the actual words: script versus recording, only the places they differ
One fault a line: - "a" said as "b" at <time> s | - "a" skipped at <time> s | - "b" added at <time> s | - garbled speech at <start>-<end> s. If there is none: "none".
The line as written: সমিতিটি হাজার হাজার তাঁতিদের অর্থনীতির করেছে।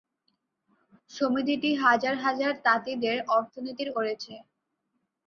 none